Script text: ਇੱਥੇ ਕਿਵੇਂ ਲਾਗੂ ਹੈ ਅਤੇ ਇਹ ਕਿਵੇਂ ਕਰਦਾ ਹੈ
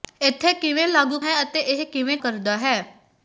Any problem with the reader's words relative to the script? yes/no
no